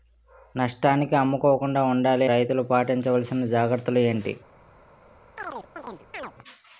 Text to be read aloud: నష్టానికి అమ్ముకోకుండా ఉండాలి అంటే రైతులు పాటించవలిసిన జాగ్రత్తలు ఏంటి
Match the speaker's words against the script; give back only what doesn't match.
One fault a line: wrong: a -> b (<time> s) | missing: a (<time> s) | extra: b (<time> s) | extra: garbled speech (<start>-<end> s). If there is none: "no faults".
missing: అంటే (2.3 s)